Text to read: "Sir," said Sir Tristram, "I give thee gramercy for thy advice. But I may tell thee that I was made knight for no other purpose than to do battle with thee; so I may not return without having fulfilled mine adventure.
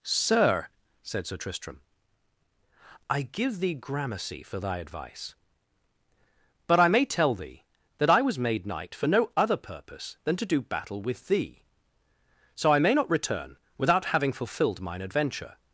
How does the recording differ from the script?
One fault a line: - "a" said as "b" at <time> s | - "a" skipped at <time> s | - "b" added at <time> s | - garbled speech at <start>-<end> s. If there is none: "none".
none